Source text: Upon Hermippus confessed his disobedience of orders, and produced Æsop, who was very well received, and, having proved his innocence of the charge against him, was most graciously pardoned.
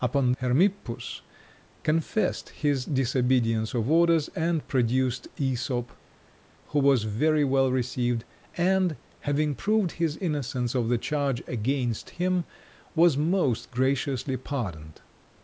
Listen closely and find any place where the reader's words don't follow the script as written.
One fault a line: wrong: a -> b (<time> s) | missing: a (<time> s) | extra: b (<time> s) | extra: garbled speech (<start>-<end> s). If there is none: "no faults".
no faults